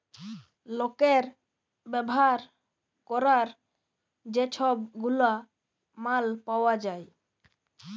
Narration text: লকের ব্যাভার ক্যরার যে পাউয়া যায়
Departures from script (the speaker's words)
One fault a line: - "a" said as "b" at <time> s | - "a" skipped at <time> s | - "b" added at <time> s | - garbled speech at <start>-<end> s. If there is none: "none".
- "ছব গুলা মাল" added at 4.5 s